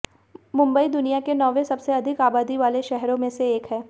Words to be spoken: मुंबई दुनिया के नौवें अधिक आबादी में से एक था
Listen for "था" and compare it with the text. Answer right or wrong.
wrong